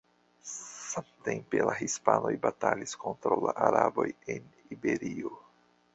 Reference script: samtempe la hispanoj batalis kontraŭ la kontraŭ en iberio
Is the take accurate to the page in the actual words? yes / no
no